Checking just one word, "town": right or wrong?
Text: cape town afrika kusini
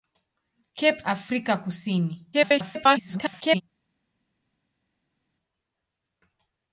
wrong